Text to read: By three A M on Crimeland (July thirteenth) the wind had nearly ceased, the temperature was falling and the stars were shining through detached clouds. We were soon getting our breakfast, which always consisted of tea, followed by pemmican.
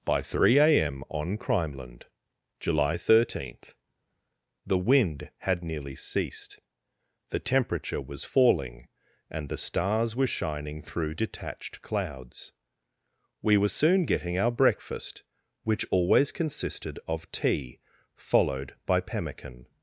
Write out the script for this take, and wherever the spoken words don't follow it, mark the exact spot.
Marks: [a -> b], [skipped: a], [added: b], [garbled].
By three A M on Crimeland (July thirteenth) the wind had nearly ceased, the temperature was falling and the stars were shining through detached clouds. We were soon getting our breakfast, which always consisted of tea, followed by pemmican.